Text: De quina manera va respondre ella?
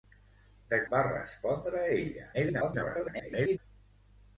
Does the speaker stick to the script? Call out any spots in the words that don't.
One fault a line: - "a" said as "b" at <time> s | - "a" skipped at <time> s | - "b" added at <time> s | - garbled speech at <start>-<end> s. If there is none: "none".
- "quina manera" skipped at 0.8 s
- garbled speech at 2.3-3.6 s